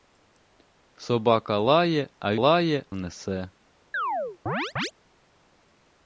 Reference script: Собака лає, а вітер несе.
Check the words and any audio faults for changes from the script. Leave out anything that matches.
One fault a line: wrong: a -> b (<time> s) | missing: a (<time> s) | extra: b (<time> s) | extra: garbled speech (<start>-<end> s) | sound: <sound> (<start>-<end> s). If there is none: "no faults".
wrong: вітер -> лає (2.3 s)
sound: chirp (3.9-4.9 s)